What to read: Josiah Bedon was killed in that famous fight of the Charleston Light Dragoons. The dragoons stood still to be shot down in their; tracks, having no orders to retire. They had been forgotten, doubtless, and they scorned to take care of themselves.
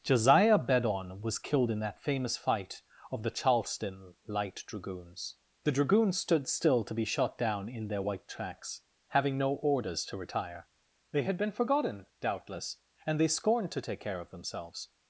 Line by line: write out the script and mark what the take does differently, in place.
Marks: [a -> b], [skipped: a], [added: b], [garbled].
Josiah Bedon was killed in that famous fight of the Charleston Light Dragoons. The dragoons stood still to be shot down in their; [added: white] tracks, having no orders to retire. They had been forgotten, doubtless, and they scorned to take care of themselves.